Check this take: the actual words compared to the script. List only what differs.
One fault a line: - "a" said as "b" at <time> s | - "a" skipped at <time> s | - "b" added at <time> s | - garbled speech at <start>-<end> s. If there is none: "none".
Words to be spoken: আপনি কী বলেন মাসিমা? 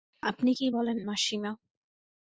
none